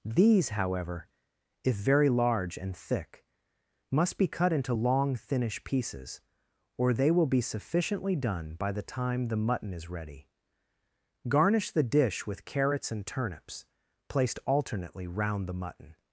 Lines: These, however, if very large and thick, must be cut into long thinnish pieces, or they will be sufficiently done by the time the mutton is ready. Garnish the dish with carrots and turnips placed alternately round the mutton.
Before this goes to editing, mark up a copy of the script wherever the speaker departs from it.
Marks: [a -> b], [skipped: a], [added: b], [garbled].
These, however, if very large and thick, must be cut into long thinnish pieces, or they will be sufficiently done by the time the mutton is ready. Garnish the dish with carrots and turnips placed alternately round the mutton.